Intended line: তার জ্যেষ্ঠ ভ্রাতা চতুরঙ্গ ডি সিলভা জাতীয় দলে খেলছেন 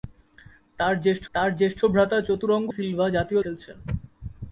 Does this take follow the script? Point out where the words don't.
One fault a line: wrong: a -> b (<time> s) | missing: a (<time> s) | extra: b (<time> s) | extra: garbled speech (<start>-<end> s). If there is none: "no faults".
extra: তার জ্যেষ্ঠ (1.3 s)
missing: ডি (2.7 s)
missing: দলে (3.4 s)